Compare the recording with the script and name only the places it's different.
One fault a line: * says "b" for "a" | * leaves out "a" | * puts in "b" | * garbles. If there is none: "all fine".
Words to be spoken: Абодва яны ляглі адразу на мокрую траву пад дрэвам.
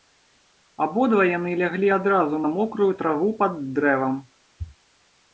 all fine